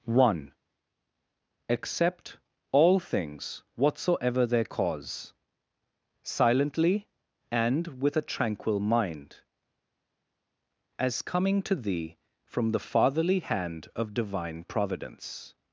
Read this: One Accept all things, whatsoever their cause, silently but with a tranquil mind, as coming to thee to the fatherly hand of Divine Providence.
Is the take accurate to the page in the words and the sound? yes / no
no